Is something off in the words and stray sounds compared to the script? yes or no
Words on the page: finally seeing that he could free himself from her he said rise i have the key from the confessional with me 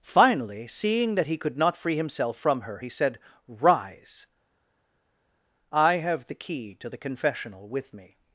yes